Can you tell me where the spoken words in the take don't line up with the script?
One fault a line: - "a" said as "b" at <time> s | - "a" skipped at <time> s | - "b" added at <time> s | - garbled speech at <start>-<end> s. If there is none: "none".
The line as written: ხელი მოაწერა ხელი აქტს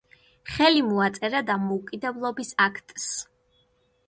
- "ხელი" said as "დამოუკიდებლობის" at 1.5 s